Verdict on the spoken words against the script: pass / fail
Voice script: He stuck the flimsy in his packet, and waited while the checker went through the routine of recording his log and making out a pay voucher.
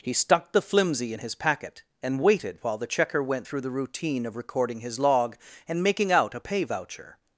pass